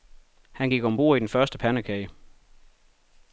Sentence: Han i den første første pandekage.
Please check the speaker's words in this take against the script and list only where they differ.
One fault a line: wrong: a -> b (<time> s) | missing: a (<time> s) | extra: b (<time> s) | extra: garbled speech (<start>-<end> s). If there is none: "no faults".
extra: gik om bord (0.7 s)
missing: første (1.6 s)